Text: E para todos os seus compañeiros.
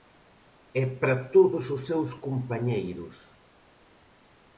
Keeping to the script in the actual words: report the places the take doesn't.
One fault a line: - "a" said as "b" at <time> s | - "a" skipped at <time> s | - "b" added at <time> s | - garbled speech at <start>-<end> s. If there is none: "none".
none